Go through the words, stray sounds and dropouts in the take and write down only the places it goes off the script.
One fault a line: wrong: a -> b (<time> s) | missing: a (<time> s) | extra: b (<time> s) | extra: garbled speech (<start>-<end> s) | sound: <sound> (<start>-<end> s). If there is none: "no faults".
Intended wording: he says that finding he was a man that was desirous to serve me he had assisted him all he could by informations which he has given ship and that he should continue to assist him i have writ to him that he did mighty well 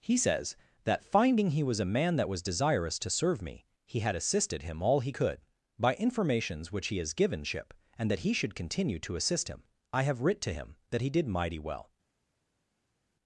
no faults